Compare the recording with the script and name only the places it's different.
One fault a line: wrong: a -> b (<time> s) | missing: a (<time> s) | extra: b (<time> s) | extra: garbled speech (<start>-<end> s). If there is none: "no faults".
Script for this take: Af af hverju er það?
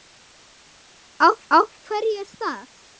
no faults